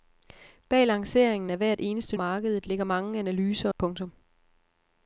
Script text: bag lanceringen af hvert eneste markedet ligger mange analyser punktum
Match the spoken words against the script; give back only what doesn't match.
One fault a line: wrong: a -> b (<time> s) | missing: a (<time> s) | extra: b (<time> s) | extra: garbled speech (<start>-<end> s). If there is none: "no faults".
no faults